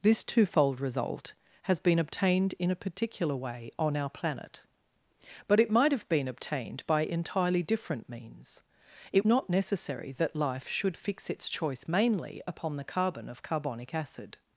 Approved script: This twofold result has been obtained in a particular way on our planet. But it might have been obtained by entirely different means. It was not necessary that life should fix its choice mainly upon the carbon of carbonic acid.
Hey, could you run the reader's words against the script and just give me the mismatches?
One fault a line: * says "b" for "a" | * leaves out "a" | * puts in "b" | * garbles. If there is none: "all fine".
* leaves out "was"